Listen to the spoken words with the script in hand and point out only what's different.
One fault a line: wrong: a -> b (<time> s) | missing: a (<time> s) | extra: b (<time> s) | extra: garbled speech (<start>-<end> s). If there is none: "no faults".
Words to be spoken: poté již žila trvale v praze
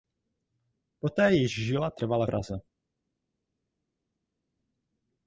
missing: v (2.3 s)